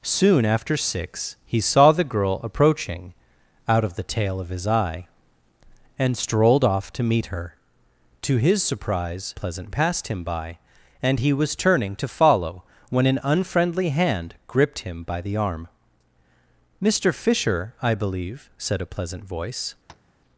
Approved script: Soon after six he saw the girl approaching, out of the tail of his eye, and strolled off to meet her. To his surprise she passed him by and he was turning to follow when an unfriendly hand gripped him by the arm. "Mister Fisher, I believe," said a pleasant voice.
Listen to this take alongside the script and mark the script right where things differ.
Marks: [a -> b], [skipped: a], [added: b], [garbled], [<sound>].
Soon after six he saw the girl approaching, out of the tail of his eye, and strolled off to meet her. To his surprise [she -> pleasant] passed him by and he was turning to follow when an unfriendly hand gripped him by the arm. "Mister Fisher, I believe," said a pleasant voice. [tap]